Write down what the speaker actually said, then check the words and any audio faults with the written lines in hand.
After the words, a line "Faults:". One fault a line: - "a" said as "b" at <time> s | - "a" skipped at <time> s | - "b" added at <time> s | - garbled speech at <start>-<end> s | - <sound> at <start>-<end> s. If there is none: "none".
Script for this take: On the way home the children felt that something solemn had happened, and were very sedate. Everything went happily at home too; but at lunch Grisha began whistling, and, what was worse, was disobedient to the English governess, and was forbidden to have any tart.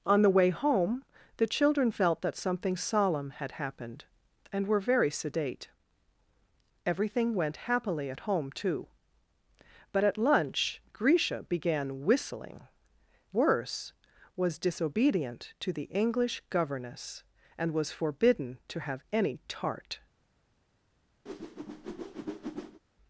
On the way home the children felt that something solemn had happened, and were very sedate. Everything went happily at home too; but at lunch Grisha began whistling, worse, was disobedient to the English governess, and was forbidden to have any tart.
Faults:
- "and what was" skipped at 12.6 s
- whoosh at 21.3-22.8 s